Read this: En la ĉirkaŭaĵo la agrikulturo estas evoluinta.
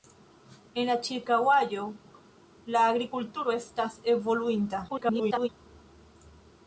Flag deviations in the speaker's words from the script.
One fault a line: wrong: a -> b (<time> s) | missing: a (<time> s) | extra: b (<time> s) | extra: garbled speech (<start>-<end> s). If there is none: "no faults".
extra: garbled speech (4.9-5.5 s)